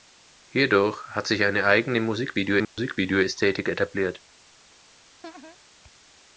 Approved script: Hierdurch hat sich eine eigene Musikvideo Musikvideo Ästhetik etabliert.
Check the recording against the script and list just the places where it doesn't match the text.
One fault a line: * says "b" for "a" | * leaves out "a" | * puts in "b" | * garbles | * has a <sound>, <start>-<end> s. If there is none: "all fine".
* has a dropout, 2.6-2.8 s
* has a laugh, 5.2-5.6 s